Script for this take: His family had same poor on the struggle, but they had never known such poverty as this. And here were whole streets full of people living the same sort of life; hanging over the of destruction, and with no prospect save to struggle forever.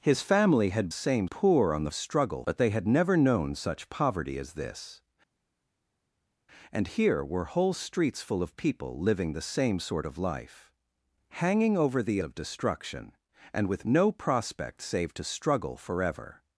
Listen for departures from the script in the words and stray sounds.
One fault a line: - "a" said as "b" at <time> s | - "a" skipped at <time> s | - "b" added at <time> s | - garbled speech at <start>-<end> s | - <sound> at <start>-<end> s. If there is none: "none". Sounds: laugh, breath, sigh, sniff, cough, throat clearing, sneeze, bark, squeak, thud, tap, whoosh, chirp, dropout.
none